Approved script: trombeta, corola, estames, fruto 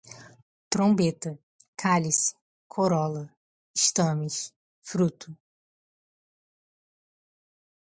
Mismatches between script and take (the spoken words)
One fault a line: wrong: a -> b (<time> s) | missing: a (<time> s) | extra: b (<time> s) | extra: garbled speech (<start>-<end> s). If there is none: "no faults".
extra: cálice (1.8 s)